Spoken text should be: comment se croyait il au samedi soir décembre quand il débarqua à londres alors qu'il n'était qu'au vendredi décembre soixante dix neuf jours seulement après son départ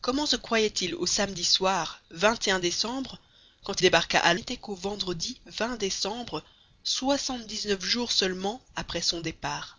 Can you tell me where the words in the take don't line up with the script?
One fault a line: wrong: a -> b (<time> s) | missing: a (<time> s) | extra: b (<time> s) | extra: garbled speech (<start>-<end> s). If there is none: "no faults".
missing: il (3.8 s)
missing: londres alors qu'il (4.3 s)